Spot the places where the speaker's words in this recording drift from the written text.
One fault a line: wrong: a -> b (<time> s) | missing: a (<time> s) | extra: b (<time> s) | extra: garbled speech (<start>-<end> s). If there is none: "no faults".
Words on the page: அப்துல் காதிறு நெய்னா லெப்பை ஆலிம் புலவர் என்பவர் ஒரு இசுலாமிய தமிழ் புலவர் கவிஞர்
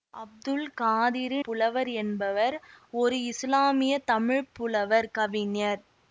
missing: நெய்னா லெப்பை ஆலிம் (1.4 s)